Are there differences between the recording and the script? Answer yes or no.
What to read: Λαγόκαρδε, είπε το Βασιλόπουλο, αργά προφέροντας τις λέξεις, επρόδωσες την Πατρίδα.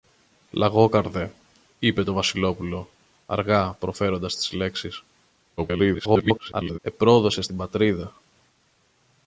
yes